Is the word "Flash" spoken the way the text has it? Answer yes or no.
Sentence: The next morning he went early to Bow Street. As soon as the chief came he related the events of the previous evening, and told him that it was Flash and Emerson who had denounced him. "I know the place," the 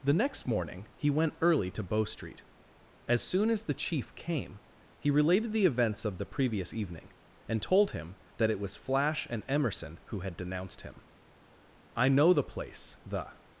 yes